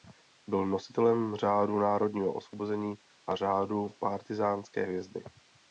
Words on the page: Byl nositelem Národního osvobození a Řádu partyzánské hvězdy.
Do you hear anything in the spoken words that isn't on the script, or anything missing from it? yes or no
yes